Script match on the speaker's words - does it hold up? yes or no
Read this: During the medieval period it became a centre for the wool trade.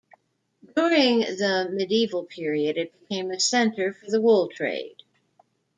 yes